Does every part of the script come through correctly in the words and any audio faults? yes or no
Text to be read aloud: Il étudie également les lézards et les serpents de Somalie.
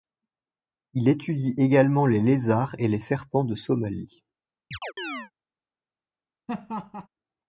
no